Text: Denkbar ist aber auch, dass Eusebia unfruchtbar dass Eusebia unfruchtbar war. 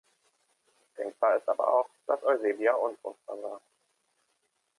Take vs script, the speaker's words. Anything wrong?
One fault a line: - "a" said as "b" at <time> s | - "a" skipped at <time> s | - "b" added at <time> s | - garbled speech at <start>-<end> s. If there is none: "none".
- "dass Eusebia unfruchtbar" skipped at 3.4 s